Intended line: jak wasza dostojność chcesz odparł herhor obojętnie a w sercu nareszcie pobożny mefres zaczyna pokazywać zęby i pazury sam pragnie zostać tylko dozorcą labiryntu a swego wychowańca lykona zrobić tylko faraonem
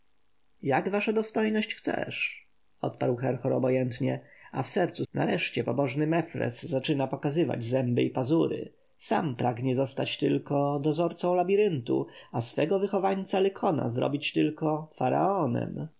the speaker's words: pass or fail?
pass